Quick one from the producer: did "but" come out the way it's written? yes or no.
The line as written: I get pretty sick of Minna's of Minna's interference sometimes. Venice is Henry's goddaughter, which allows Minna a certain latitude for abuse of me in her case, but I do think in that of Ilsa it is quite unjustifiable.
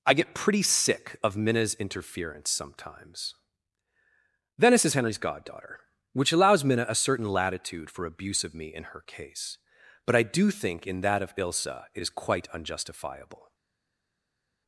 yes